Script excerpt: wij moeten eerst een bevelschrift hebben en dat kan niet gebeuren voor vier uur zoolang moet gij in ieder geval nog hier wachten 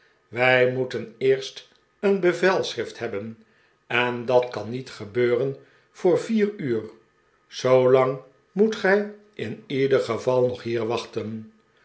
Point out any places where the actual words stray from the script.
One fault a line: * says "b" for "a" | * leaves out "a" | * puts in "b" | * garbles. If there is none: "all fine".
all fine